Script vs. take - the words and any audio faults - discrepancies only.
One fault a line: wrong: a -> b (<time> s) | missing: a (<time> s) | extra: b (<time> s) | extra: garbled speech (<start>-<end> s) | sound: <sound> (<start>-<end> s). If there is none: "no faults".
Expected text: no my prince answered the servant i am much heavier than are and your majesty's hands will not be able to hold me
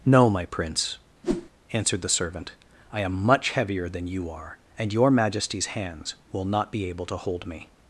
sound: whoosh (1.2-1.5 s)
extra: you (4.1 s)